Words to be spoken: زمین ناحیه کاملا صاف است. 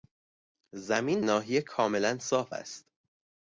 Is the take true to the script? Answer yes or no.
yes